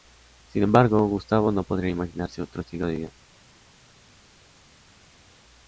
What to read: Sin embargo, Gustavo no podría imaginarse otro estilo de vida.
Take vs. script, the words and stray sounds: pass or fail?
pass